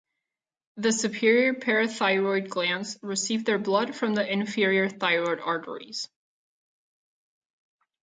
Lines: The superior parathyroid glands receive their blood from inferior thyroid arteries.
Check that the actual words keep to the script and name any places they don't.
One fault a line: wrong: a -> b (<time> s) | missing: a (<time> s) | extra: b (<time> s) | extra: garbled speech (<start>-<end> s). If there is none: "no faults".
extra: the (4.2 s)